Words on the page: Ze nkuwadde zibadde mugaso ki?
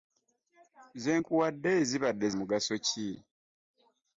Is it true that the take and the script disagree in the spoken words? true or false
false